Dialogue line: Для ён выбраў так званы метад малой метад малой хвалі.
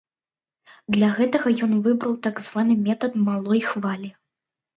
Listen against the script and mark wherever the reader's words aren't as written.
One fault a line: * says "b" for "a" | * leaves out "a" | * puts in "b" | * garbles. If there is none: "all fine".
* puts in "гэтага"
* leaves out "метад малой"